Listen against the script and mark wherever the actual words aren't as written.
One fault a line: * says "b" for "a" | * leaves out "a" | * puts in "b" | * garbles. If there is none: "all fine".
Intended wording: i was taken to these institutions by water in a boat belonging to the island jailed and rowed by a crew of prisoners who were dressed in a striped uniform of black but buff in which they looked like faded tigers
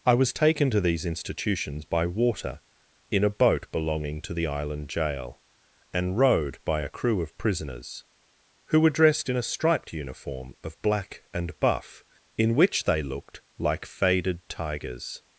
* says "jail" for "jailed"
* says "and" for "but"